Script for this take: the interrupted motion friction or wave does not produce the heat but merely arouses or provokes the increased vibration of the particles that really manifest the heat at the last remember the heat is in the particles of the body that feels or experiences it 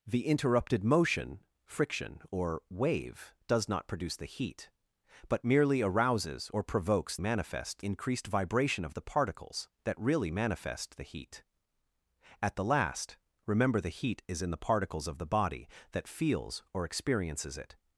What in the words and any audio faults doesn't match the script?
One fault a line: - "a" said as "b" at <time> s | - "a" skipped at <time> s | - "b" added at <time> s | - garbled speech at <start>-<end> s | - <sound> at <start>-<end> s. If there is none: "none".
- "the" said as "manifest" at 7.2 s